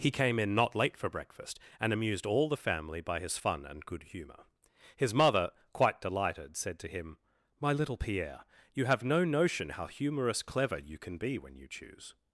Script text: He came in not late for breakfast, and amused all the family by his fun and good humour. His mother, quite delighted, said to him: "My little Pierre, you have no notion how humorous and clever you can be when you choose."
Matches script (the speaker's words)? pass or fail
fail